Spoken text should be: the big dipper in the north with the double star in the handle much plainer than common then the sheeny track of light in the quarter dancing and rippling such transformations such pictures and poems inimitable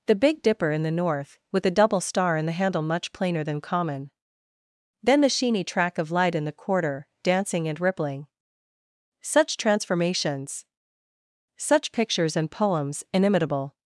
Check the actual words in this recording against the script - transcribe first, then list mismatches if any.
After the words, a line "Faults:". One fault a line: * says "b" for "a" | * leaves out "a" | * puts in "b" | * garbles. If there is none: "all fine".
the big dipper in the north with the double star in the handle much plainer than common then the sheeny track of light in the quarter dancing and rippling such transformations such pictures and poems inimitable
Faults:
all fine